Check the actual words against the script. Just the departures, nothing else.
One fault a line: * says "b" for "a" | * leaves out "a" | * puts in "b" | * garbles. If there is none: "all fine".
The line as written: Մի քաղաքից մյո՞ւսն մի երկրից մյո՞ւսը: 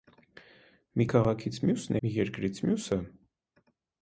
all fine